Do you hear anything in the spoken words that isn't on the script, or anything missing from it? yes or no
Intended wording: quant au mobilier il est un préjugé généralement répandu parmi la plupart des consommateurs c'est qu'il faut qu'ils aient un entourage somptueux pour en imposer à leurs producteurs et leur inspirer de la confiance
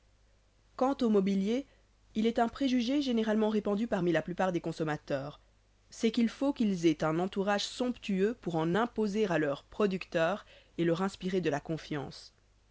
no